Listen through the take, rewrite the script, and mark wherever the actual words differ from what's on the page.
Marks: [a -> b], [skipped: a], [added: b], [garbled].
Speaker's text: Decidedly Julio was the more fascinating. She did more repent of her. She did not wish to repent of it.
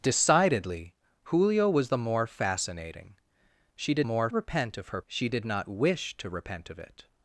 Decidedly Julio was the more fascinating. She did more repent of her. She did not wish to repent of it.